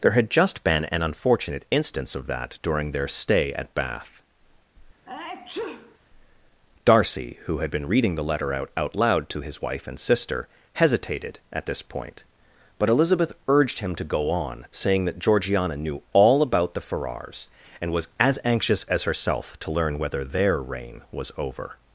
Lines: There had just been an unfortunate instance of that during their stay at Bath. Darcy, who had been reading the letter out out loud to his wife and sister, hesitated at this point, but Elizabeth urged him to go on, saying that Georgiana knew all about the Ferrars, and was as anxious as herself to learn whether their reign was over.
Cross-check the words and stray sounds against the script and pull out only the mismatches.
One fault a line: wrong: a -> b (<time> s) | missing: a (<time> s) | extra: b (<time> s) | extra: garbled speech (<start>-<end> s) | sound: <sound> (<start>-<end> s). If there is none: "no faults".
sound: sneeze (5.1-6.0 s)